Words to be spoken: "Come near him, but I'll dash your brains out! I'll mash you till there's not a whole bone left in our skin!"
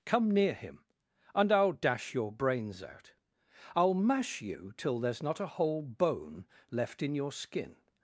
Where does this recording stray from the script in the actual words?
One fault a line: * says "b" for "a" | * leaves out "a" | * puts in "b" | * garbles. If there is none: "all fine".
* says "and" for "but"
* says "your" for "our"